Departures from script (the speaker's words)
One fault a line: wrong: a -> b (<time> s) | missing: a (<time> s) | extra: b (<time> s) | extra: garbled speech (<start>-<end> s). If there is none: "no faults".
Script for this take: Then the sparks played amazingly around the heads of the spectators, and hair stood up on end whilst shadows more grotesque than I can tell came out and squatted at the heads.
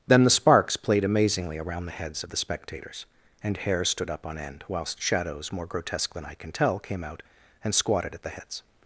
no faults